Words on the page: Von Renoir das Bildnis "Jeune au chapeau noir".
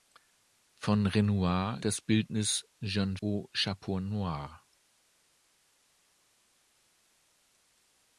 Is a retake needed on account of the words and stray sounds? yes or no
no